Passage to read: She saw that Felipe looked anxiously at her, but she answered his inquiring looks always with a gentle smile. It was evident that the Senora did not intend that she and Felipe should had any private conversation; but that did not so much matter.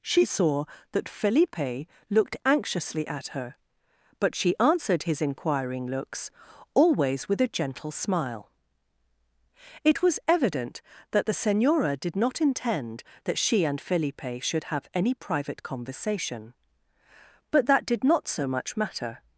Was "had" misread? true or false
true